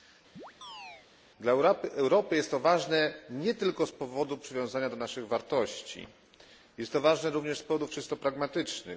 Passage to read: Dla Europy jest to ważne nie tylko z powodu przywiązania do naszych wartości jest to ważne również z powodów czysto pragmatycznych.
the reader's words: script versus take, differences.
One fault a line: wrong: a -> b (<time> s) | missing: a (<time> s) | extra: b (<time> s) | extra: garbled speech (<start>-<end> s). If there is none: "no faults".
no faults